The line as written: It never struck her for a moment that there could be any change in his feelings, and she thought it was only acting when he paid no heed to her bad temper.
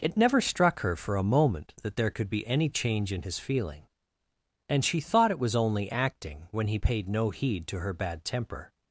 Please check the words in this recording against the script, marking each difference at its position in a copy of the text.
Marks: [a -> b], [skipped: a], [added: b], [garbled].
It never struck her for a moment that there could be any change in his [feelings, -> feeling] and she thought it was only acting when he paid no heed to her bad temper.